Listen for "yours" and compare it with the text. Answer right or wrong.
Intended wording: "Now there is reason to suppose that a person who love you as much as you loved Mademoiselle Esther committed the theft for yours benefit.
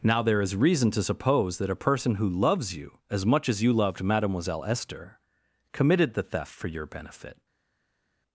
wrong